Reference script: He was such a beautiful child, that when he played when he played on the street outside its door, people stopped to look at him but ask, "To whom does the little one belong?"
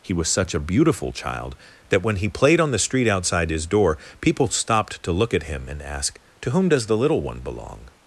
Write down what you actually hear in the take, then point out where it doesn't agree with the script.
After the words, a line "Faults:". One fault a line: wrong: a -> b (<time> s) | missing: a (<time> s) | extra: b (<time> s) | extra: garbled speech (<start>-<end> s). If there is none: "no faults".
He was such a beautiful child, that when he played on the street outside his door, people stopped to look at him and ask, "To whom does the little one belong?"
Faults:
missing: when he played (2.6 s)
wrong: its -> his (3.5 s)
wrong: but -> and (5.7 s)